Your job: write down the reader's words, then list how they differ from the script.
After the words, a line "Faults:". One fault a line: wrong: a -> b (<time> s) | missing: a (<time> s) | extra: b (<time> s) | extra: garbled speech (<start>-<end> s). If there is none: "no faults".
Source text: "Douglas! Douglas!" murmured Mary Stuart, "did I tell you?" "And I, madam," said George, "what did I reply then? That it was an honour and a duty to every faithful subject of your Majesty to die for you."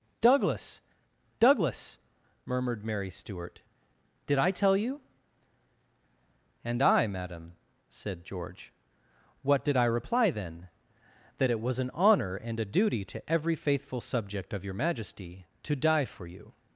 "Douglas! Douglas!" murmured Mary Stuart, "did I tell you?" "And I, madam," said George, "what did I reply then? That it was an honour and a duty to every faithful subject of your Majesty to die for you."
Faults:
no faults